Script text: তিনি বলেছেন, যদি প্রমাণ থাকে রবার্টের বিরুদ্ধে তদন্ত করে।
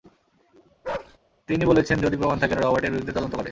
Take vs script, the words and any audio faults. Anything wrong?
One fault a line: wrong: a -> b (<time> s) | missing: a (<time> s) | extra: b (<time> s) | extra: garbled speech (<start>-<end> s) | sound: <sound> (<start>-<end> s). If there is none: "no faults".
sound: bark (0.8-1.2 s)